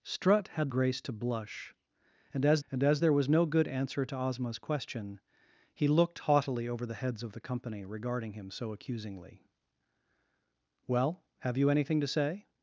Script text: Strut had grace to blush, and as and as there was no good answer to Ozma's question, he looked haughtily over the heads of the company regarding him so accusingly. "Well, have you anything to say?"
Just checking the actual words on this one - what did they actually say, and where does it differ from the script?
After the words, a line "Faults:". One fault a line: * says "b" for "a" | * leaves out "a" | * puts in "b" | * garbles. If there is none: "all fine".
Strut had grace to blush, and as and as there was no good answer to Ozma's question, he looked haughtily over the heads of the company regarding him so accusingly. "Well, have you anything to say?"
Faults:
all fine